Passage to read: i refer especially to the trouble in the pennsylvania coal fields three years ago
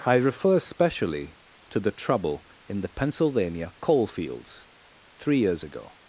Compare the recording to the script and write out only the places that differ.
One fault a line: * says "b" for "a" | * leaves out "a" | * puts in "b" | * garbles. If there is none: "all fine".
all fine